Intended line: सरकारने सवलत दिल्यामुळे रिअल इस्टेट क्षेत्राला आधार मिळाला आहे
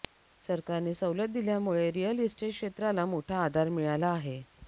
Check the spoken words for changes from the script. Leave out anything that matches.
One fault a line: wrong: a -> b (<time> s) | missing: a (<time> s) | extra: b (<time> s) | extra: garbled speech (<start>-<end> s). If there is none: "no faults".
extra: मोठा (3.0 s)